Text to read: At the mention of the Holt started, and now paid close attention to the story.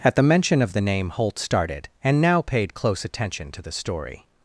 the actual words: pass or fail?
fail